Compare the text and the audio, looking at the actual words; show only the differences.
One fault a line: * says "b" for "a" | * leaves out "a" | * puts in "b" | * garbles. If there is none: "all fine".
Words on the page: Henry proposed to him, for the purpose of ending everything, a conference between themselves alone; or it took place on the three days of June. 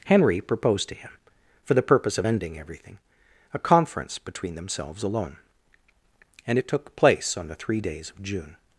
* says "and" for "or"